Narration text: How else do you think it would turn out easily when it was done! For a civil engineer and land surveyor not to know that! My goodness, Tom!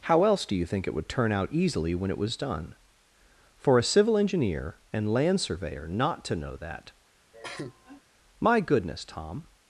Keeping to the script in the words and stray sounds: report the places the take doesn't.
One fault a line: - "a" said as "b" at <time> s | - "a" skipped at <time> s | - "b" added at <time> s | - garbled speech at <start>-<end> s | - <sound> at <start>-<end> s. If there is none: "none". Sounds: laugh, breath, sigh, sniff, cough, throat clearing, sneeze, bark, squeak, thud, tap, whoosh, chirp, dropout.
- cough at 7.3-8.0 s